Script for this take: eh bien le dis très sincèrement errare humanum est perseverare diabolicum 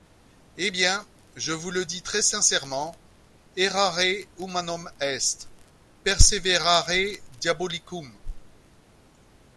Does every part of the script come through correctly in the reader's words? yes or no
no